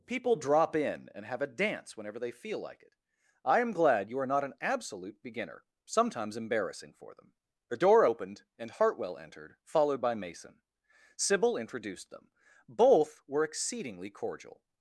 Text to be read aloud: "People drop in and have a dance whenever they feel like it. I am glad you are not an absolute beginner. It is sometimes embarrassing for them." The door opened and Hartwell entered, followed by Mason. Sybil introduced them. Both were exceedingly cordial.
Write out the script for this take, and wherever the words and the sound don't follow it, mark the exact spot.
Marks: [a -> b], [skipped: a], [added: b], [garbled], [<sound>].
"People drop in and have a dance whenever they feel like it. I am glad you are not an absolute beginner. [skipped: It is] sometimes embarrassing for them." The door opened and Hartwell entered, followed by Mason. Sybil introduced them. Both were exceedingly cordial.